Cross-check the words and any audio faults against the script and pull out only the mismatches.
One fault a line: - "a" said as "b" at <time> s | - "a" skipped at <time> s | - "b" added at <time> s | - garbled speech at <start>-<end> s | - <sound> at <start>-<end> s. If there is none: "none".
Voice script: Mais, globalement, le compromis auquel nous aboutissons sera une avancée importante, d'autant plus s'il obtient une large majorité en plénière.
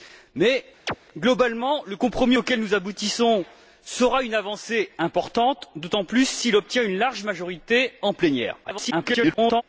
- chirp at 0.9-1.0 s
- garbled speech at 8.6-9.6 s